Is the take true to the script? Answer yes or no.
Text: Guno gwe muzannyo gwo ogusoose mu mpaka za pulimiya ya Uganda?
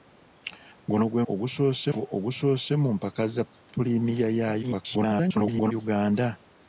no